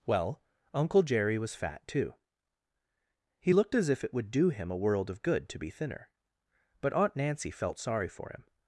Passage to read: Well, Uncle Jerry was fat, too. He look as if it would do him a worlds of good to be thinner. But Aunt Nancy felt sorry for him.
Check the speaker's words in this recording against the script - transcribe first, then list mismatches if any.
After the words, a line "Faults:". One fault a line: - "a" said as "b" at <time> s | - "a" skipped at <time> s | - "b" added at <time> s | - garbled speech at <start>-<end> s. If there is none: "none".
Well, Uncle Jerry was fat, too. He looked as if it would do him a world of good to be thinner. But Aunt Nancy felt sorry for him.
Faults:
- "look" said as "looked" at 3.5 s
- "worlds" said as "world" at 4.8 s